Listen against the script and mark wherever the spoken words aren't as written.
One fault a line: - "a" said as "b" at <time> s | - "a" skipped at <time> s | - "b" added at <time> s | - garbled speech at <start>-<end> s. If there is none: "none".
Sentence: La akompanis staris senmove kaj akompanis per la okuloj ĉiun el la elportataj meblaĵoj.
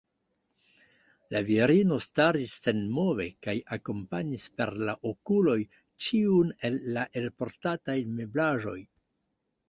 - "akompanis" said as "virino" at 1.5 s